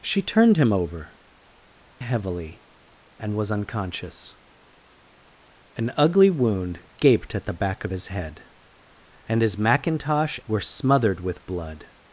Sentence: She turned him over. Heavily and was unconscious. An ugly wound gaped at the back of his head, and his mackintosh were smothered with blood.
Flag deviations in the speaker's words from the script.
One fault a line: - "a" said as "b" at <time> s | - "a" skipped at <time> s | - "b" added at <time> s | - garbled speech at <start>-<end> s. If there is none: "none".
none